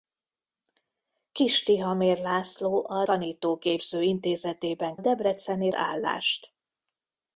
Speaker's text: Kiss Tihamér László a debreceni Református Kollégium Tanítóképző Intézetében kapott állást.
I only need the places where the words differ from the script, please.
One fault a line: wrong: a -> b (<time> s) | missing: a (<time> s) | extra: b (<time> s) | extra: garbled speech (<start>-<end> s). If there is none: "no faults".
missing: debreceni Református Kollégium (3.0 s)
wrong: kapott -> debreceni (5.0 s)